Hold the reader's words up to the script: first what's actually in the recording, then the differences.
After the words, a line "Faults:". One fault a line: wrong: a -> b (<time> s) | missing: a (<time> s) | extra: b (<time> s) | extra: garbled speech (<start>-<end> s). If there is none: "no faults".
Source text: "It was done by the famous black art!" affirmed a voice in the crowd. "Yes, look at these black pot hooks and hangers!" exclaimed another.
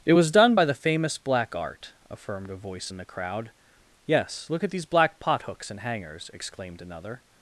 "It was done by the famous black art!" affirmed a voice in the crowd. "Yes, look at these black pot hooks and hangers!" exclaimed another.
Faults:
no faults